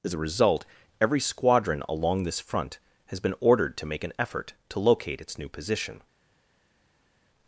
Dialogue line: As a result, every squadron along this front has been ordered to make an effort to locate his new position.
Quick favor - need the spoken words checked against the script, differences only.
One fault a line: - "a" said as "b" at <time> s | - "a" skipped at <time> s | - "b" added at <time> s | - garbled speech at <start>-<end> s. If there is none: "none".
- "his" said as "its" at 5.2 s